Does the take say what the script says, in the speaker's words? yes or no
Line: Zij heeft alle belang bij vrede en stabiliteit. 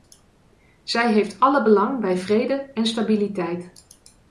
yes